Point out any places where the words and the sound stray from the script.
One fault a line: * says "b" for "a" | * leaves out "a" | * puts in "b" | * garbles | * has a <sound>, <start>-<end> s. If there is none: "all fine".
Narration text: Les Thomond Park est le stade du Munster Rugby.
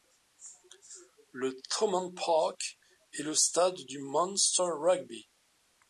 * says "Le" for "Les"